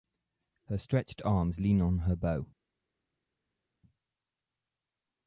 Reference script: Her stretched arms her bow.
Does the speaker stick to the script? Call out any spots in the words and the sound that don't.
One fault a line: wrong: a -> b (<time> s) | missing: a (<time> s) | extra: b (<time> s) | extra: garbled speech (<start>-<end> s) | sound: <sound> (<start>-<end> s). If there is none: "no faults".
extra: lean on (1.6 s)